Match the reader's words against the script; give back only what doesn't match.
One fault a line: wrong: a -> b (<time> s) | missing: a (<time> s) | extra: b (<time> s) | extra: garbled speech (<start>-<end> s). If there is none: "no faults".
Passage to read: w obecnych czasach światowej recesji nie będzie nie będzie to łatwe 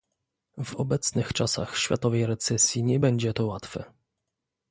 missing: nie będzie (3.3 s)